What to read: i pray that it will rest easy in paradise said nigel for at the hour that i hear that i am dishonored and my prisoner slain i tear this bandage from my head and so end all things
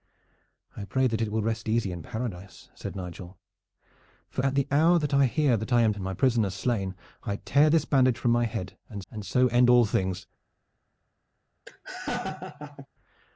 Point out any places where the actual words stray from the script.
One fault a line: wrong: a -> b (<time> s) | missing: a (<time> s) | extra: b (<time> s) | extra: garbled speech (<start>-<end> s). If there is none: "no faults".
missing: dishonored (5.9 s)
extra: and (9.1 s)